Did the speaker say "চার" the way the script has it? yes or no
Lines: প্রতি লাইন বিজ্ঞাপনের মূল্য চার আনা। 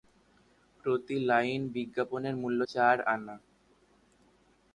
yes